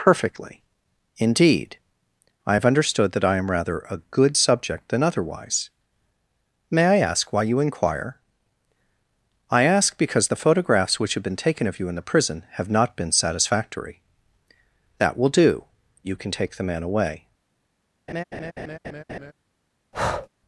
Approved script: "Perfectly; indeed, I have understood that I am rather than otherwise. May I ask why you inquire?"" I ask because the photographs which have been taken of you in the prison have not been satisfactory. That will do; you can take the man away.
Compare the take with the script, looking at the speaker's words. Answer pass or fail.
fail